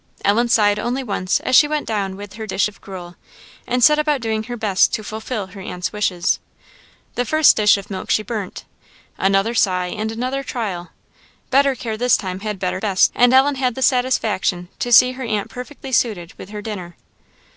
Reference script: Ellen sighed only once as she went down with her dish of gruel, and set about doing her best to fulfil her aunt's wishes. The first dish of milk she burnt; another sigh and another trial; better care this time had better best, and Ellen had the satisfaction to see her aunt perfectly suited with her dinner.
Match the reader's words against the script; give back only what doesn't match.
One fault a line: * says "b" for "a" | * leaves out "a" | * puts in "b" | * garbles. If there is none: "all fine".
all fine